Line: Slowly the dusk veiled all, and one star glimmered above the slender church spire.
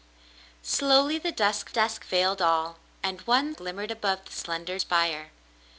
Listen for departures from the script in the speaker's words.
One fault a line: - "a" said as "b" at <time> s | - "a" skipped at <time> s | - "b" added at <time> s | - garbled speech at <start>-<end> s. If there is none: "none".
- "dusk" added at 1.7 s
- "star" skipped at 3.5 s
- "church" skipped at 4.8 s